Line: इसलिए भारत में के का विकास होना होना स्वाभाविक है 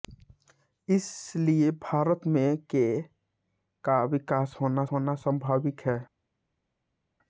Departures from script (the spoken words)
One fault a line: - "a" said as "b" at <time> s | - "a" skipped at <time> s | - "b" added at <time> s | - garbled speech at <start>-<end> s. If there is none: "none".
none